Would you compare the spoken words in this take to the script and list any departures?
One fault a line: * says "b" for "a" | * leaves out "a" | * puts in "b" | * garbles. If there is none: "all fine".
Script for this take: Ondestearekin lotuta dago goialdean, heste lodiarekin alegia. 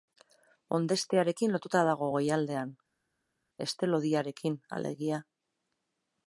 all fine